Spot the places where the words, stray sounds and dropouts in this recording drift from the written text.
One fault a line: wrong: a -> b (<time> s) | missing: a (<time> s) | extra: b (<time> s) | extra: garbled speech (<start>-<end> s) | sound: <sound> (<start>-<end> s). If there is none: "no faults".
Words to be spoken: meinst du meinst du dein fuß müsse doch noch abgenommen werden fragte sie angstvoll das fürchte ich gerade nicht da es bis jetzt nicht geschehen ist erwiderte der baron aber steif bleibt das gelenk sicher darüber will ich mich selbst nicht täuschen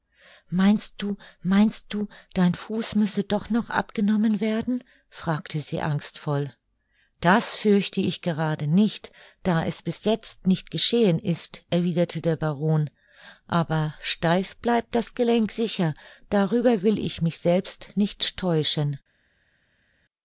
no faults